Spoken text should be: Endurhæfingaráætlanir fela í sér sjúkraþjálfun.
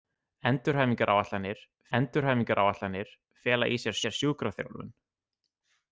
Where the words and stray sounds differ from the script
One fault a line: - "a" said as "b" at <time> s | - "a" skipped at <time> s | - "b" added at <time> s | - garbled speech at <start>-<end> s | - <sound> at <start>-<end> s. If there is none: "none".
- "endurhæfingaráætlanir" added at 2.0 s
- "sér" added at 4.0 s